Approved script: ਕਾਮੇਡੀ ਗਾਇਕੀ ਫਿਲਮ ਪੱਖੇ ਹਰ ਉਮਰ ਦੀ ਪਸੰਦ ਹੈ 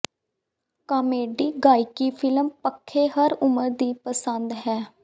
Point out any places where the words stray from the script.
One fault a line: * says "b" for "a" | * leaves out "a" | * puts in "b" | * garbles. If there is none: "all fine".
all fine